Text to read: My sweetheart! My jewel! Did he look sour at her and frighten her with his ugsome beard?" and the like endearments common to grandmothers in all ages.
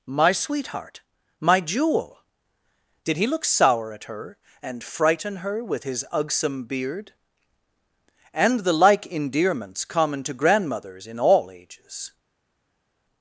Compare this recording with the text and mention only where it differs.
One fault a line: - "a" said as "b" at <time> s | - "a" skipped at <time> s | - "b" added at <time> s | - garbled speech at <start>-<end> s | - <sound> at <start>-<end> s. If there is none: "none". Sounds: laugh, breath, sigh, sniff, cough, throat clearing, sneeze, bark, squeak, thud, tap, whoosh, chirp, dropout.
none